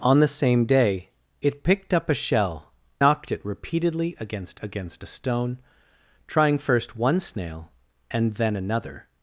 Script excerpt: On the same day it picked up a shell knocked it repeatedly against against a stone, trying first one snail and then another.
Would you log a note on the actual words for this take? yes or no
no